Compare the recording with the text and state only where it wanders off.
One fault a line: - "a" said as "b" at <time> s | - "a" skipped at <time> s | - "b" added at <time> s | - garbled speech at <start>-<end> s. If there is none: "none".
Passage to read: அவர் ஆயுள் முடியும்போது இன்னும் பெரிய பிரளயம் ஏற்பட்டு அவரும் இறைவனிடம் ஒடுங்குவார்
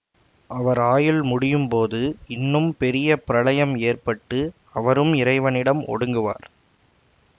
none